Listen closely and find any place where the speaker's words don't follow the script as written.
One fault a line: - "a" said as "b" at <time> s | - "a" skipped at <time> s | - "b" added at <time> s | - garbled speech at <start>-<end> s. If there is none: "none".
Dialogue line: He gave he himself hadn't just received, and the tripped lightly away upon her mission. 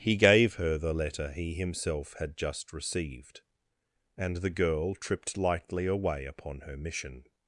- "her the letter" added at 0.6 s
- "hadn't" said as "had" at 2.2 s
- "girl" added at 4.5 s